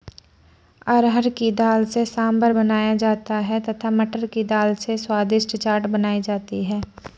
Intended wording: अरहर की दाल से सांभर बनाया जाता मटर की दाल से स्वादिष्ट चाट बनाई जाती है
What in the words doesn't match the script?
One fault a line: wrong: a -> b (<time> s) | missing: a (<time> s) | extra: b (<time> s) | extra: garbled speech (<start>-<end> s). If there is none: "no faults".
extra: है तथा (3.5 s)